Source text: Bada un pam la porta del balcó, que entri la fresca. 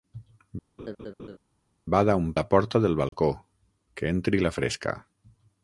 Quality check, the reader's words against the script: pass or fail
fail